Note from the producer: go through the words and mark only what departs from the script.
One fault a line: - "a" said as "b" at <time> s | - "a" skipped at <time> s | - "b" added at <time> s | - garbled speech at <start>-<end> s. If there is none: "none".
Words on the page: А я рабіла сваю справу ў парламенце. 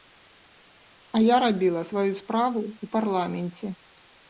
none